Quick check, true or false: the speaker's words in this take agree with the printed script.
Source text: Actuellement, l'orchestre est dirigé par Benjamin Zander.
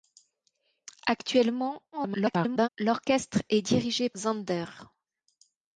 false